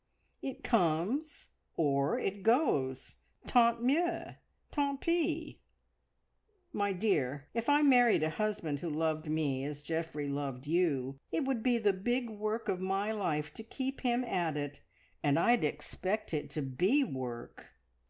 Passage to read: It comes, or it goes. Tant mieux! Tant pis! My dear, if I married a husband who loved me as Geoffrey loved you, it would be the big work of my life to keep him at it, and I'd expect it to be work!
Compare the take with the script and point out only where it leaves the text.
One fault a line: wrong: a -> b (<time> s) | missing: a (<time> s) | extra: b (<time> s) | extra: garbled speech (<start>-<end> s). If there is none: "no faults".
no faults